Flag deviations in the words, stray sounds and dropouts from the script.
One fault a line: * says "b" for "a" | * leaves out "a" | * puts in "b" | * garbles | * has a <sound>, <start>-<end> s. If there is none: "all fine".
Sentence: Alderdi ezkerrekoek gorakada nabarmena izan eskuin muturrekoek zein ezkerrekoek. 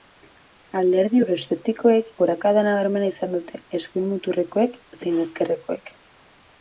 * says "euroeszeptikoek" for "ezkerrekoek"
* puts in "dute"